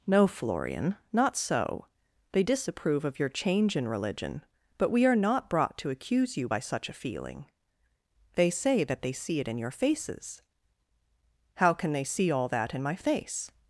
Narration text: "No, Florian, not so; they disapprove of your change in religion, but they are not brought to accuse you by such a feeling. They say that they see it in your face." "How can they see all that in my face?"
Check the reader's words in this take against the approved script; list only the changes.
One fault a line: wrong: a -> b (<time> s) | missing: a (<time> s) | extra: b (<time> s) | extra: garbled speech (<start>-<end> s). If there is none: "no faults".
wrong: they -> we (4.9 s)
wrong: face -> faces (9.7 s)